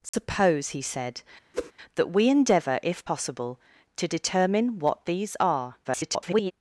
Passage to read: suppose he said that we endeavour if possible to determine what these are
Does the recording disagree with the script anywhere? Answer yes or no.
yes